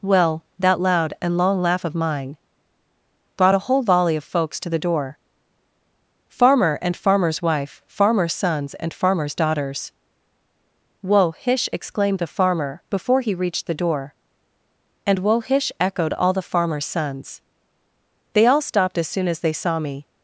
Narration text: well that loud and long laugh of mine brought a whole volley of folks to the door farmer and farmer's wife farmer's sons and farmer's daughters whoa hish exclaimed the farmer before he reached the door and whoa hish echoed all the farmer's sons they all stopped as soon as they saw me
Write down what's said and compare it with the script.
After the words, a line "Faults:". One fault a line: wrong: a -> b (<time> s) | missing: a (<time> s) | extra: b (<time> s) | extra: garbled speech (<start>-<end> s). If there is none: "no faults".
well that loud and long laugh of mine brought a whole volley of folks to the door farmer and farmer's wife farmer's sons and farmer's daughters whoa hish exclaimed the farmer before he reached the door and whoa hish echoed all the farmer's sons they all stopped as soon as they saw me
Faults:
no faults